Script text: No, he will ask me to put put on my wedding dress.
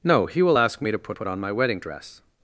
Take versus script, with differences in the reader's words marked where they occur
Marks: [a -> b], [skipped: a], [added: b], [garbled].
No, he will ask me to put put on my wedding dress.